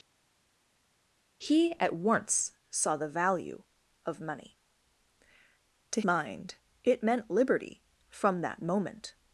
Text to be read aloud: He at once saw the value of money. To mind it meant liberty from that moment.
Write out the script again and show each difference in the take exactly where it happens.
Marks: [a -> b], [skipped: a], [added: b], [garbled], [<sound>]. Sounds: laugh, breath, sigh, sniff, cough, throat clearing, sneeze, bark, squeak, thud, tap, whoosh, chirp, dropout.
He at once saw the value of money. To mind it meant liberty from that moment.